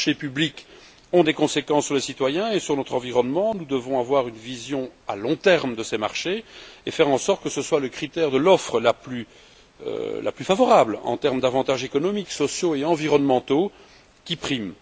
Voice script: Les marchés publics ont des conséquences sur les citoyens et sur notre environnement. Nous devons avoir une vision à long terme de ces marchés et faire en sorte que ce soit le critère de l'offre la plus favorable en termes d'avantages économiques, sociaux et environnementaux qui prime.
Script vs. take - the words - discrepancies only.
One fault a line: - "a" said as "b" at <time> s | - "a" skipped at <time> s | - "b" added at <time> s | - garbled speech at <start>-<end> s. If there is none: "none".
none